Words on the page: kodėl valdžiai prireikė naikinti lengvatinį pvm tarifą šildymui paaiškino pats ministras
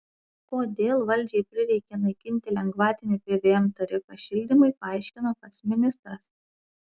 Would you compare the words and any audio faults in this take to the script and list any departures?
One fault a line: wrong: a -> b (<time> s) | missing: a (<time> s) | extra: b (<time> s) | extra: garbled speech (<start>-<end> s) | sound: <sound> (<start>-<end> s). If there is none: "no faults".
no faults